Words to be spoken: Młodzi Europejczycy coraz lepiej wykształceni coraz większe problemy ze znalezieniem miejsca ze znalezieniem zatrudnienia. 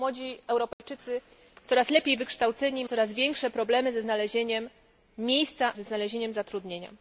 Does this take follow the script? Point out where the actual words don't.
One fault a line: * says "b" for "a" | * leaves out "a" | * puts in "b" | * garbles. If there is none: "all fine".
all fine